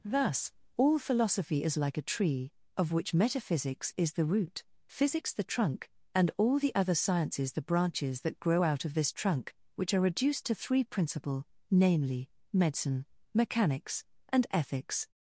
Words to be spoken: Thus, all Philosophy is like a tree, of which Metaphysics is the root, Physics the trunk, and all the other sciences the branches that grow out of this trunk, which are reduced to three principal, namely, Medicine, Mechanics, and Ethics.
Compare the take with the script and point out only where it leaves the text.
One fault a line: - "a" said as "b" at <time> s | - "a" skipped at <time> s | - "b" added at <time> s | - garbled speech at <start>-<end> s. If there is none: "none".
none